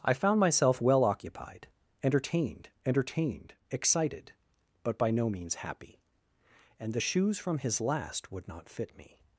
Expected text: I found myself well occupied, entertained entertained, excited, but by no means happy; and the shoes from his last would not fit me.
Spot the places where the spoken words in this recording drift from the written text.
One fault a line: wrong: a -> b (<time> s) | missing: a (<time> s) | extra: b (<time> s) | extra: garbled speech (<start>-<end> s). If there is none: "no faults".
no faults